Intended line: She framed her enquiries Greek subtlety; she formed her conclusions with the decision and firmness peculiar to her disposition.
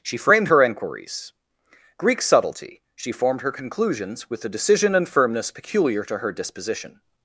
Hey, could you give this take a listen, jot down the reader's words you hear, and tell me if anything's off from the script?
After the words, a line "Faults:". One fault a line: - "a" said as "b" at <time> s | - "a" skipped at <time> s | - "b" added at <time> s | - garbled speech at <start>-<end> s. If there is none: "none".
She framed her enquiries Greek subtlety; she formed her conclusions with the decision and firmness peculiar to her disposition.
Faults:
none